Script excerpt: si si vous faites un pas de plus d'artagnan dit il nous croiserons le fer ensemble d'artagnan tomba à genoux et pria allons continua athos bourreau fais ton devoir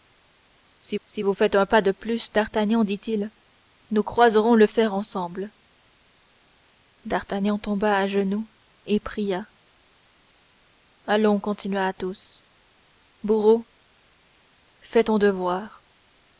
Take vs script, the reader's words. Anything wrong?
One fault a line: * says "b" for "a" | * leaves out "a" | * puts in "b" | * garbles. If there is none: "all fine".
all fine